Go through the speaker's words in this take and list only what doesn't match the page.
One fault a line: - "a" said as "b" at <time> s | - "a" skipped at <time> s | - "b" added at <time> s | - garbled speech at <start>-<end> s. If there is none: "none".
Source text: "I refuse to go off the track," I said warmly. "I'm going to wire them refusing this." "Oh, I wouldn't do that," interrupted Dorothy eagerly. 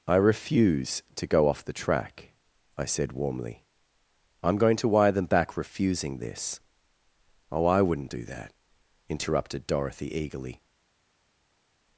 - "back" added at 5.2 s